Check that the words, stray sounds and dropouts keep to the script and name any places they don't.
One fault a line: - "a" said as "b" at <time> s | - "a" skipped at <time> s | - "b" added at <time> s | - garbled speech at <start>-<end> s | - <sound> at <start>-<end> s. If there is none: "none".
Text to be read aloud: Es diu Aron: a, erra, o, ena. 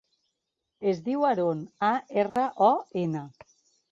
- dropout at 2.3-2.4 s